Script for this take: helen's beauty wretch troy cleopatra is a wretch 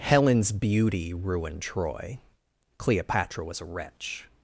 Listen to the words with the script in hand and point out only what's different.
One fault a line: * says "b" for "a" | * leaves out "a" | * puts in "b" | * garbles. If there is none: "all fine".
* says "ruined" for "wretch"
* says "was" for "is"